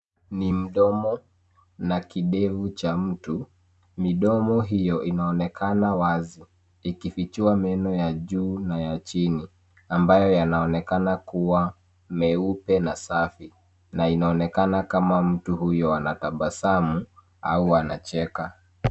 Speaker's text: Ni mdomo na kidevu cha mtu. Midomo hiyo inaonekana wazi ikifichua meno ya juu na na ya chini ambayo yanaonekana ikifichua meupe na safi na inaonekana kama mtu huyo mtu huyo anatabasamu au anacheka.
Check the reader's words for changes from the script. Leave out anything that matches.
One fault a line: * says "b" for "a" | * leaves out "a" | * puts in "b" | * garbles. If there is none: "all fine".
* leaves out "na"
* says "kuwa" for "ikifichua"
* leaves out "mtu huyo"